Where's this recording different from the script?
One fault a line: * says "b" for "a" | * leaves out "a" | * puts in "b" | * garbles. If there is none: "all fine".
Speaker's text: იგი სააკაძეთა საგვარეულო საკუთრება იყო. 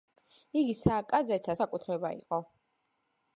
* leaves out "საგვარეულო"